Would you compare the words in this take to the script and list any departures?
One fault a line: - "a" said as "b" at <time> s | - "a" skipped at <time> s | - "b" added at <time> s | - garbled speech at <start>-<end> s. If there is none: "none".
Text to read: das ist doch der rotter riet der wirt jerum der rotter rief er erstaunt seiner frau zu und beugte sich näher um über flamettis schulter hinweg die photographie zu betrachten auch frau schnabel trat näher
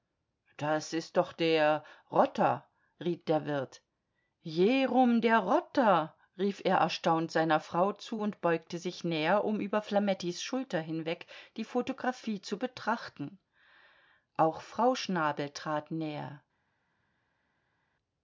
none